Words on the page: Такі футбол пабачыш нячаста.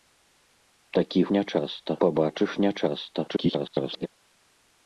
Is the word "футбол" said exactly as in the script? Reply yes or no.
no